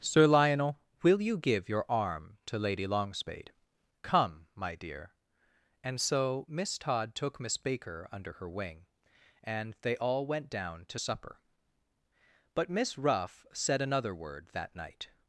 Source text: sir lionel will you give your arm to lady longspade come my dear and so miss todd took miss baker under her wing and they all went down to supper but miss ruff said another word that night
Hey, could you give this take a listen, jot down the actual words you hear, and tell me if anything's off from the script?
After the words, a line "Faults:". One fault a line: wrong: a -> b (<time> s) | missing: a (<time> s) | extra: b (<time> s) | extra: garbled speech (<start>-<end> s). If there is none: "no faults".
sir lionel will you give your arm to lady longspade come my dear and so miss todd took miss baker under her wing and they all went down to supper but miss ruff said another word that night
Faults:
no faults